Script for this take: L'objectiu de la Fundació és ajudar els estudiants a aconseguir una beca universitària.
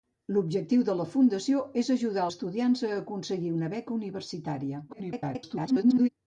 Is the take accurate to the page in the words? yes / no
no